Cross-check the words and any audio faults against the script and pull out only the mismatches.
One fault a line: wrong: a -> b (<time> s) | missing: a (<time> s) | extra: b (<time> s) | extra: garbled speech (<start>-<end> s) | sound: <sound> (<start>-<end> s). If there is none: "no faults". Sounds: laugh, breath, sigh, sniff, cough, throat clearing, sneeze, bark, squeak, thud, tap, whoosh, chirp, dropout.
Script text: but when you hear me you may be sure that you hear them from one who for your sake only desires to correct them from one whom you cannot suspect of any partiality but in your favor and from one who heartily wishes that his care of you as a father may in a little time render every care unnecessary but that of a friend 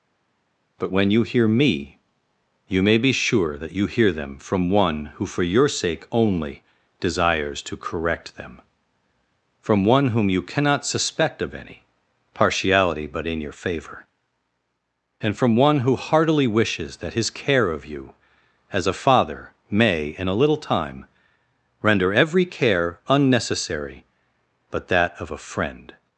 no faults